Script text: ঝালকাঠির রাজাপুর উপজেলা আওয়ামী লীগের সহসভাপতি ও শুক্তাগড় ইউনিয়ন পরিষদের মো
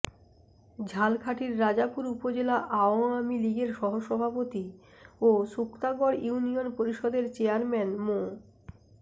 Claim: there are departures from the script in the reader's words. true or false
true